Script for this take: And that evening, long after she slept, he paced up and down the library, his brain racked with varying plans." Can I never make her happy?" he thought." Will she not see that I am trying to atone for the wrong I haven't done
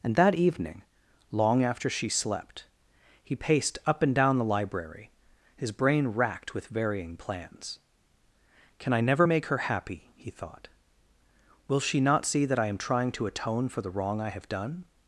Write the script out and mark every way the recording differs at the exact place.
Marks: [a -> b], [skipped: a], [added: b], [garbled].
And that evening, long after she slept, he paced up and down the library, his brain racked with varying plans." Can I never make her happy?" he thought." Will she not see that I am trying to atone for the wrong I [haven't -> have] done